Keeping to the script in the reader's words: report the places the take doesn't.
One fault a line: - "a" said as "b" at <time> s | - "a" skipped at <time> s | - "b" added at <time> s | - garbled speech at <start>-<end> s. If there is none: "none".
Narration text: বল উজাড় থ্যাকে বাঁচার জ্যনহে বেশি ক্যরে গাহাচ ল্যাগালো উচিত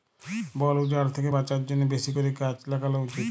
none